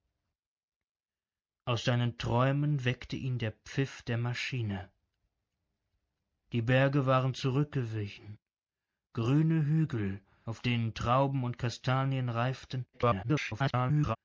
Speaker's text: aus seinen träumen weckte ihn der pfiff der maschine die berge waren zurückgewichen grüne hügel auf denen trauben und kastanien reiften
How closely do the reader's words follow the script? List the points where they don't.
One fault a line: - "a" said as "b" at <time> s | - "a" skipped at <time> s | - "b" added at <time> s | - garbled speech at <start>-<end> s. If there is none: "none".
- garbled speech at 12.9-14.2 s